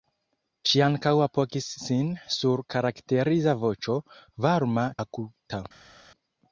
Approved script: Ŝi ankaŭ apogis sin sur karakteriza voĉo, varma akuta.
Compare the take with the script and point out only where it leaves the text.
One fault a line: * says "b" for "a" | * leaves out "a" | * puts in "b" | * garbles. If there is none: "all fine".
all fine